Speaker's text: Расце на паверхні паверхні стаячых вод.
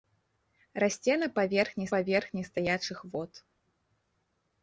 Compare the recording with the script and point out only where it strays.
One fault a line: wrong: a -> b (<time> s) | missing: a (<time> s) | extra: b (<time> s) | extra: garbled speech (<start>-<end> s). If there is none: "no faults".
no faults